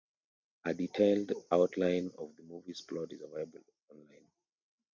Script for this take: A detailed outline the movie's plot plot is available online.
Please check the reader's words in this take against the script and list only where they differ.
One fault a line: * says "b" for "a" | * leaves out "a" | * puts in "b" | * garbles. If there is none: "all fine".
* puts in "of"
* leaves out "plot"